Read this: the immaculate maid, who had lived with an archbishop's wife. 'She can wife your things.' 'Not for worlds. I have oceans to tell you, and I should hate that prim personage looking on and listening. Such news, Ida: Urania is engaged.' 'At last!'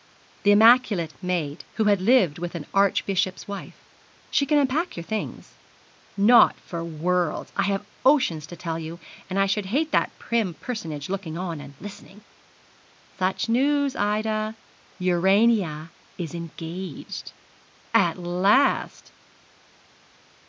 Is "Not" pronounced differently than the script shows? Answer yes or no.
no